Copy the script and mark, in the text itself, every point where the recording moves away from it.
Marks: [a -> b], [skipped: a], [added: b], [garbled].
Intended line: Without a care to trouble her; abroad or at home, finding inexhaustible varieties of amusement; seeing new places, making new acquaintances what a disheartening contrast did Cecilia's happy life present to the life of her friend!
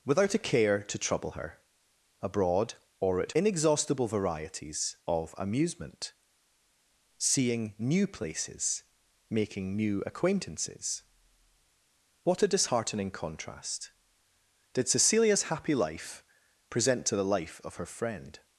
Without a care to trouble her; abroad or at [skipped: home, finding] inexhaustible varieties of amusement; seeing new places, making new acquaintances what a disheartening contrast did Cecilia's happy life present to the life of her friend!